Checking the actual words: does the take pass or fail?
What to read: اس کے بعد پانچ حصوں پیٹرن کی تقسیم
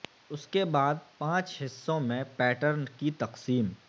fail